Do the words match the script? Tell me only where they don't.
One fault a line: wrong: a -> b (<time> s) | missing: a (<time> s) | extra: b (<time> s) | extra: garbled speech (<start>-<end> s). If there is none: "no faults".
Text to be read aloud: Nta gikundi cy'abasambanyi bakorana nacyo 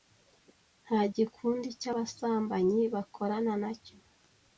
no faults